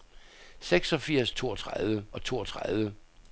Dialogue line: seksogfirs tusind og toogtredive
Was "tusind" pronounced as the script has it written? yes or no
no